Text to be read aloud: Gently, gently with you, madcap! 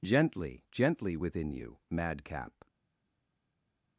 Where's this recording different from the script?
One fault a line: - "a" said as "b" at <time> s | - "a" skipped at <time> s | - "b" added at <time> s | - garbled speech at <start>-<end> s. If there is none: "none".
- "with" said as "within" at 1.2 s